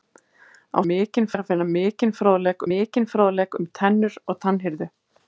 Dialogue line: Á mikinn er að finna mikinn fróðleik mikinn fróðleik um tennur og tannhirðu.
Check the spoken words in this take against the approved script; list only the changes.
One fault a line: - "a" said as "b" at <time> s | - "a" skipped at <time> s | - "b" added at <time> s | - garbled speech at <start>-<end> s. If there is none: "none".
none